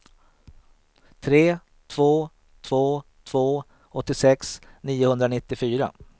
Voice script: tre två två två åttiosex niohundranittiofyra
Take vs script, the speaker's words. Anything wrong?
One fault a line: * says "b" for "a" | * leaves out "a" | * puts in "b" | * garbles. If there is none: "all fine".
all fine